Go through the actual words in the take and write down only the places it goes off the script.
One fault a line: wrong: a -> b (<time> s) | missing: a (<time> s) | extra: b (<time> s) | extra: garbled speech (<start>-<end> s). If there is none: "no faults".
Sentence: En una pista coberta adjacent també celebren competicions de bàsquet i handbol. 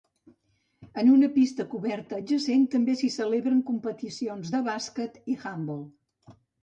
extra: s'hi (3.0 s)